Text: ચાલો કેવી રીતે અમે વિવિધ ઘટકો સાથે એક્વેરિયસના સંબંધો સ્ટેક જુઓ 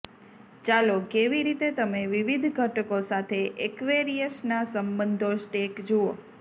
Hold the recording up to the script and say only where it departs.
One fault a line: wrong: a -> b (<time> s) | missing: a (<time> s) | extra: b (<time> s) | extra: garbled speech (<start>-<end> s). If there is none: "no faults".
wrong: અમે -> તમે (1.7 s)